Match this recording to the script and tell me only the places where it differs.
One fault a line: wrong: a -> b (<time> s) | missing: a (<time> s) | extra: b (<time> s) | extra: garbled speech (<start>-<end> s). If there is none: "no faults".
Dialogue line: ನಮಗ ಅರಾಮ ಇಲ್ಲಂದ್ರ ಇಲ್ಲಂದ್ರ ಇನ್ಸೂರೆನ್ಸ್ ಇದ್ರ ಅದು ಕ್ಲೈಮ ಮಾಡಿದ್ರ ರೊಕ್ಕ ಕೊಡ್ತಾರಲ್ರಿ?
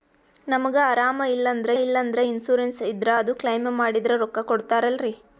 no faults